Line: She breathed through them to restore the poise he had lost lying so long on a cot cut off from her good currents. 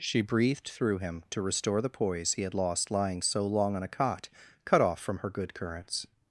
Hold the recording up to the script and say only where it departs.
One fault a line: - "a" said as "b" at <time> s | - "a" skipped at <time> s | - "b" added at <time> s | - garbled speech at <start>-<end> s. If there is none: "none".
- "them" said as "him" at 1.0 s